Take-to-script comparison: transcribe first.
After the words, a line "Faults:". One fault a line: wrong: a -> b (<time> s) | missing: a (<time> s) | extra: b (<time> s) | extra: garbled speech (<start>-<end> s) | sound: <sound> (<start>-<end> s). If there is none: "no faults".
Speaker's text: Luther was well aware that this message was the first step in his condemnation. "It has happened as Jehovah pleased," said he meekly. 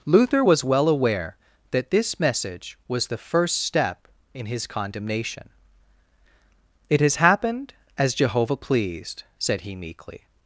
Luther was well aware that this message was the first step in his condemnation. "It has happened as Jehovah pleased," said he meekly.
Faults:
no faults